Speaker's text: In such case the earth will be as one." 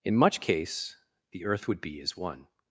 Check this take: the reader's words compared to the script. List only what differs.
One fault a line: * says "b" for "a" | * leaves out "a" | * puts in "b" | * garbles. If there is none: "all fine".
* says "much" for "such"
* says "would" for "will"